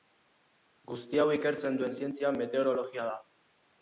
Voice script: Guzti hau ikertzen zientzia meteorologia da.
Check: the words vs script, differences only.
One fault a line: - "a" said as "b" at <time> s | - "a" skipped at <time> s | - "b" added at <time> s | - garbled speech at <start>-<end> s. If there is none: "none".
- "duen" added at 1.8 s